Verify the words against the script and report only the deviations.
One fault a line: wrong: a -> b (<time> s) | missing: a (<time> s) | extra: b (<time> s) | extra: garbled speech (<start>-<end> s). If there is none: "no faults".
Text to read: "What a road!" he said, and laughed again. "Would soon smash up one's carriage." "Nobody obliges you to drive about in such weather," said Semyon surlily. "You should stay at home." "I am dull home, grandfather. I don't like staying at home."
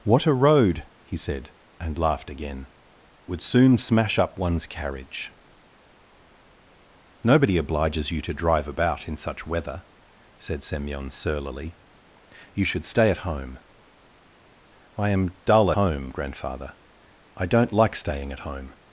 no faults